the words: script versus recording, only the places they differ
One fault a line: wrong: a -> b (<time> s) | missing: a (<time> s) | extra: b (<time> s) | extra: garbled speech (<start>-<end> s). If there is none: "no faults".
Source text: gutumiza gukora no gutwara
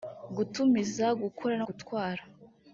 no faults